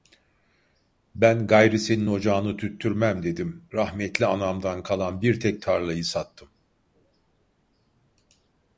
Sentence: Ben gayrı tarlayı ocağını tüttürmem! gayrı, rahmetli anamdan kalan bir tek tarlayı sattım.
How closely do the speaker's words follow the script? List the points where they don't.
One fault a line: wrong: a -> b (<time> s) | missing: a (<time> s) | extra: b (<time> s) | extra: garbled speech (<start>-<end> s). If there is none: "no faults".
wrong: tarlayı -> senin (1.8 s)
wrong: gayrı -> dedim (3.2 s)